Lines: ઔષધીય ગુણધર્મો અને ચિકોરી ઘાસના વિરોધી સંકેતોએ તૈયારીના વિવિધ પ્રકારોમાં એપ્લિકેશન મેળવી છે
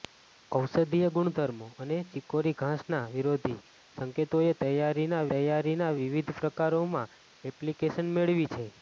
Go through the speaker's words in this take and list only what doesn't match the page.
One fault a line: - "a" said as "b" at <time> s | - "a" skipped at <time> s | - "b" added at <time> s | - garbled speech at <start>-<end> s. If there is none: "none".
- "તૈયારીના" added at 5.3 s